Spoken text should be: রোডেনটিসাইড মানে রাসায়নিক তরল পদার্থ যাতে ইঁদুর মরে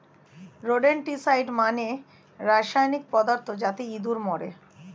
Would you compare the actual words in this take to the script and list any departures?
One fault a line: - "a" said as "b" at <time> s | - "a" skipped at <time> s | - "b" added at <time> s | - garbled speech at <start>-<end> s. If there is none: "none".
- "তরল" skipped at 3.0 s